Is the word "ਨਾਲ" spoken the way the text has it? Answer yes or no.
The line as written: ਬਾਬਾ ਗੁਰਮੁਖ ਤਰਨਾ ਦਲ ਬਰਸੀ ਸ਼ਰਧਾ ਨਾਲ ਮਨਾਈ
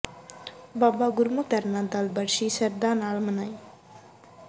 yes